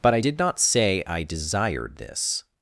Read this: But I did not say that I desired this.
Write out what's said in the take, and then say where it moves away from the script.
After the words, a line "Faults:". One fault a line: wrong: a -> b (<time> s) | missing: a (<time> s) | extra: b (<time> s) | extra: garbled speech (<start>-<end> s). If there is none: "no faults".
But I did not say I desired this.
Faults:
missing: that (1.0 s)